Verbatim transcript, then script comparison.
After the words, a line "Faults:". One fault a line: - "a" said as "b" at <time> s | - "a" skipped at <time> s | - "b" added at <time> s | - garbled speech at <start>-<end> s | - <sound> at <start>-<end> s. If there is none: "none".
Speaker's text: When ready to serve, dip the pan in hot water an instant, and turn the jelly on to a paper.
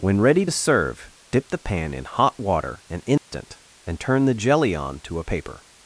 When ready to serve, dip the pan in hot water an instant, and turn the jelly on to a paper.
Faults:
- dropout at 3.2-3.3 s